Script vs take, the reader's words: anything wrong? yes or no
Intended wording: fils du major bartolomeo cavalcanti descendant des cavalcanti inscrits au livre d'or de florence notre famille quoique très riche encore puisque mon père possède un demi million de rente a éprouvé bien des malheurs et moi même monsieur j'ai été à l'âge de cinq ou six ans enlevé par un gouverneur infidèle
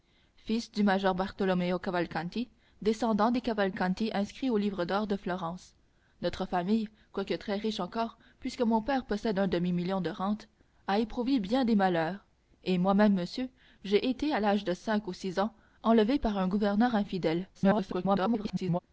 yes